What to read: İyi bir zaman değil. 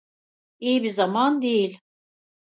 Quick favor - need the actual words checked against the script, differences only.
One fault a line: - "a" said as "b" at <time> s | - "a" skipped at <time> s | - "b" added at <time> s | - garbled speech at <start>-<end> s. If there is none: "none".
none